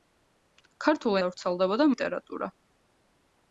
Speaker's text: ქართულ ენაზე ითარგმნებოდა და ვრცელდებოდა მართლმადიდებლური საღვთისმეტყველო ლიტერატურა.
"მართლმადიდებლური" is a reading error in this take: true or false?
true